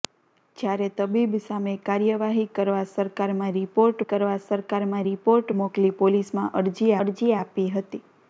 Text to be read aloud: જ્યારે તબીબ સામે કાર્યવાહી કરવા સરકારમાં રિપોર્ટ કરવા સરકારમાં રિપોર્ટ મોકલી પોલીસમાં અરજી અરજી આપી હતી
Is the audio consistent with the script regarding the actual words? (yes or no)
yes